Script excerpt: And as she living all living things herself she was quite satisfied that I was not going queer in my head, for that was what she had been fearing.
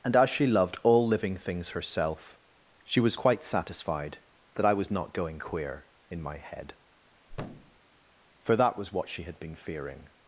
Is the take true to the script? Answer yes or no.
no